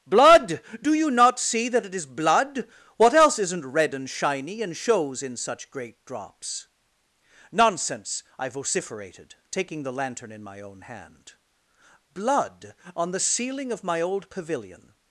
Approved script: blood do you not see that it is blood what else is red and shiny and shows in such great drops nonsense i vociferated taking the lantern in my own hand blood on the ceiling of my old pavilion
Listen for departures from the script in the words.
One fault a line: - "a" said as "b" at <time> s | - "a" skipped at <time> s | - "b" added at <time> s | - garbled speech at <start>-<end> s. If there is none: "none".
- "is" said as "isn't" at 3.4 s